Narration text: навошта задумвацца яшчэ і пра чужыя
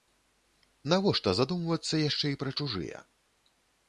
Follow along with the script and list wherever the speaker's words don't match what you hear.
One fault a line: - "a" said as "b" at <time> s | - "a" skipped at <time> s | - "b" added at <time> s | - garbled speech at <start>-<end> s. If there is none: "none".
none